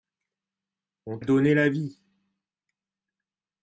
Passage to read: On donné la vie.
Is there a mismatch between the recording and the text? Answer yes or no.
no